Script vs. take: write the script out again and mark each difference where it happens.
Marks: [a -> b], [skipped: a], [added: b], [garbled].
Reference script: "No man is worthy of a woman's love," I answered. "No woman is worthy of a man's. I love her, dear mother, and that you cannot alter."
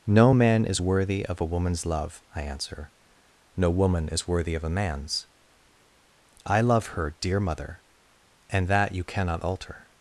"No man is worthy of a woman's love," I [answered. -> answer] "No woman is worthy of a man's. I love her, dear mother, and that you cannot alter."